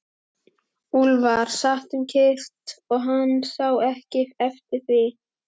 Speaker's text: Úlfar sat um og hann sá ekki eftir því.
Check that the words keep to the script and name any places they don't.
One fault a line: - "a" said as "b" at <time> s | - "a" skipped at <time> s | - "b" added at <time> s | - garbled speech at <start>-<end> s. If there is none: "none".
- "kyrrt" added at 2.1 s